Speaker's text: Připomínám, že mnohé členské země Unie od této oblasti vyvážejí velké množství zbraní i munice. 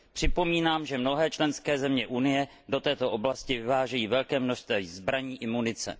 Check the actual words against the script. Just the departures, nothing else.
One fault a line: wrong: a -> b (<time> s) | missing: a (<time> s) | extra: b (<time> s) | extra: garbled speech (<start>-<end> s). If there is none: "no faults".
wrong: od -> do (2.7 s)